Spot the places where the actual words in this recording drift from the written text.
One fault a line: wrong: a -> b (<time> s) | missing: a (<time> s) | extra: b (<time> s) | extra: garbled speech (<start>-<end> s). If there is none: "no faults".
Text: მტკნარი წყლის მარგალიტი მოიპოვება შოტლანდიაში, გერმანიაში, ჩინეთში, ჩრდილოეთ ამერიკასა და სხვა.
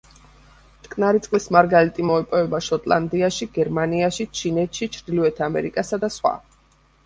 no faults